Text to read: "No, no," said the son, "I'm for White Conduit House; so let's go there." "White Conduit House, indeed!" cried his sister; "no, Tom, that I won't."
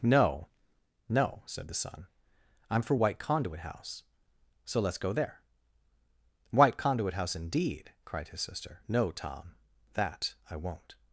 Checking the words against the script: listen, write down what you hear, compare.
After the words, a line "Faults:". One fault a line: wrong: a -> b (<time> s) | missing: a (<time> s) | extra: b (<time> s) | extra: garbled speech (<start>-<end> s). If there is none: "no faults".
"No, no," said the son, "I'm for White Conduit House; so let's go there." "White Conduit House, indeed!" cried his sister; "no, Tom, that I won't."
Faults:
no faults